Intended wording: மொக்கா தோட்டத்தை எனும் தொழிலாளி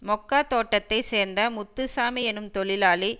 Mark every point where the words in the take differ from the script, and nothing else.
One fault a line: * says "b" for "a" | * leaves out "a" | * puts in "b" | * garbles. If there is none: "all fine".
* puts in "சேர்ந்த முத்துசாமி"